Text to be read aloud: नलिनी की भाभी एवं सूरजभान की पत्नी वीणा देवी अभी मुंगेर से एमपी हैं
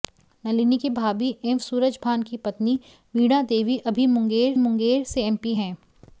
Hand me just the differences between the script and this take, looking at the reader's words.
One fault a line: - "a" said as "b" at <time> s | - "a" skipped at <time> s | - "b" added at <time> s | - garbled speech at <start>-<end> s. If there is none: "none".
- "मुंगेर" added at 4.6 s